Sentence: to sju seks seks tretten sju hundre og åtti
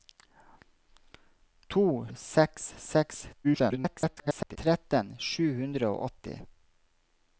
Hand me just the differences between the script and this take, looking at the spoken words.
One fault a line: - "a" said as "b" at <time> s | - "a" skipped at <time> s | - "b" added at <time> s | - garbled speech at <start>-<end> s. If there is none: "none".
- "sju" skipped at 1.8 s
- garbled speech at 3.4-4.6 s